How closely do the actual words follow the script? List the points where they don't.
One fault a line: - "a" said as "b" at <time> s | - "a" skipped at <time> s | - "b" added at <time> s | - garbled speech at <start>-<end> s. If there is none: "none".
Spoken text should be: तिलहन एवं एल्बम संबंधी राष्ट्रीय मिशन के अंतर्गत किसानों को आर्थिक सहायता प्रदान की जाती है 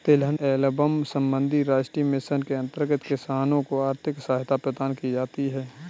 - "एवं" skipped at 0.4 s